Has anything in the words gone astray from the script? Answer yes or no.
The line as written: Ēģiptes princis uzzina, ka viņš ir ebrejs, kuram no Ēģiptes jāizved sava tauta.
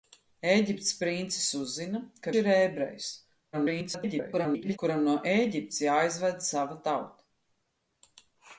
yes